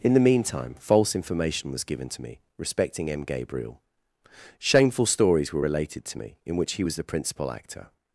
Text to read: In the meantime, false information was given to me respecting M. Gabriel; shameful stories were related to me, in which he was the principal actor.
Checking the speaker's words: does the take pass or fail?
pass